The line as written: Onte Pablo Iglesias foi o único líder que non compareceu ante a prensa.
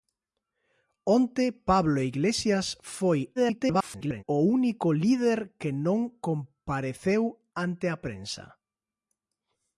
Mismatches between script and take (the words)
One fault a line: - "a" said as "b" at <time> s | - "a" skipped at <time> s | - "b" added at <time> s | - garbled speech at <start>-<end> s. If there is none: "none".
- garbled speech at 3.4-4.2 s